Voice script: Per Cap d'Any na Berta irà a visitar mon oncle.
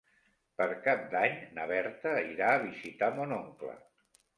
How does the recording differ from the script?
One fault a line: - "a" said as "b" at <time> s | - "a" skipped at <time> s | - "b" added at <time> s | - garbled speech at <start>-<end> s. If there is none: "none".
none